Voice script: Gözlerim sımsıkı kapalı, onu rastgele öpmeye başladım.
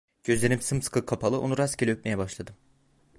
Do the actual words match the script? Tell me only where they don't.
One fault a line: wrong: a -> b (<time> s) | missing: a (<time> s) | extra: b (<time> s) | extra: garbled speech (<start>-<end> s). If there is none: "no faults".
no faults